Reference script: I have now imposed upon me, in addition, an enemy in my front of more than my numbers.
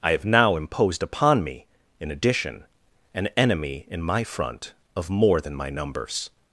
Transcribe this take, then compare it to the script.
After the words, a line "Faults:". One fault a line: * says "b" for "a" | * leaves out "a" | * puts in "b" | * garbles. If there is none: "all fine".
I have now imposed upon me, in addition, an enemy in my front of more than my numbers.
Faults:
all fine